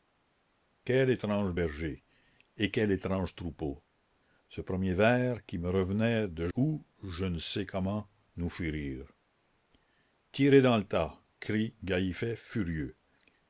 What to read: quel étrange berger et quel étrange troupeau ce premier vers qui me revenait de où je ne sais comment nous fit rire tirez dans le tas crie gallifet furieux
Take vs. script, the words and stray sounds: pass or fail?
pass